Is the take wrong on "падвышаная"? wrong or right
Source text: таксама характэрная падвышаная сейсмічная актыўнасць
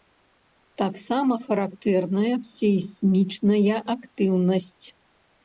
wrong